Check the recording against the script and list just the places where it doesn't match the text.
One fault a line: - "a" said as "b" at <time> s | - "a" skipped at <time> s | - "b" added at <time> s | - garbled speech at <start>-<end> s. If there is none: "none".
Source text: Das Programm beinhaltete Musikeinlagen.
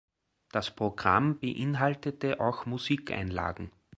- "auch" added at 2.4 s